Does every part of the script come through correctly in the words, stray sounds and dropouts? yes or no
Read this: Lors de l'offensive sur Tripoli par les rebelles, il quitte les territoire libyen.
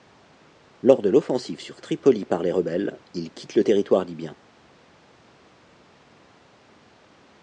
no